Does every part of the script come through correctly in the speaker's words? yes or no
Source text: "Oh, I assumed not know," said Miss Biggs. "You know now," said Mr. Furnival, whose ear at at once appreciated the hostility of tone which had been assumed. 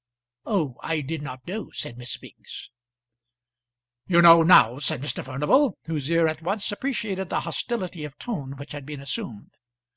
no